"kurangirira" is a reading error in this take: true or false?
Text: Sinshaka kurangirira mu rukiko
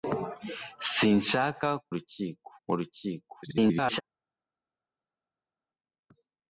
true